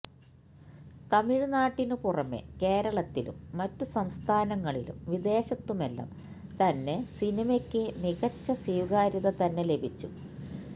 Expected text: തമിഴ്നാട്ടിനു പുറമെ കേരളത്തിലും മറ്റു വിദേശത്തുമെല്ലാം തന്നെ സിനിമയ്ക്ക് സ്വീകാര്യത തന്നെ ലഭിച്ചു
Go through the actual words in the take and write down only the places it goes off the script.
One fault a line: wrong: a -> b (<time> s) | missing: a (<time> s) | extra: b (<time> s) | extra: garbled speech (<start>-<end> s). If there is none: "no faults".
extra: സംസ്ഥാനങ്ങളിലും (3.9 s)
extra: മികച്ച (8.0 s)